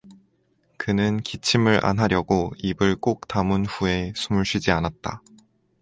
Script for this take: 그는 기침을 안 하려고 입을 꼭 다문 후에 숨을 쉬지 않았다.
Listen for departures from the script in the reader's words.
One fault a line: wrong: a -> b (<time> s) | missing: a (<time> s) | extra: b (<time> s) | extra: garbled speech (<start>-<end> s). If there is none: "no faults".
no faults